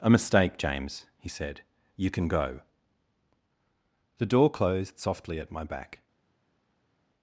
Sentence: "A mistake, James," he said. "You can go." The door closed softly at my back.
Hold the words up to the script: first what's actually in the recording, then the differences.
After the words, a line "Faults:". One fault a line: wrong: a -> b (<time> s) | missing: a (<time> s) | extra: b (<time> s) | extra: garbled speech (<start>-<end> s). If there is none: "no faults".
"A mistake, James," he said. "You can go." The door closed softly at my back.
Faults:
no faults